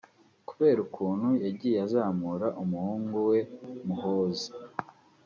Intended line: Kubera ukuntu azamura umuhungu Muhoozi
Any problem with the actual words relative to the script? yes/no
yes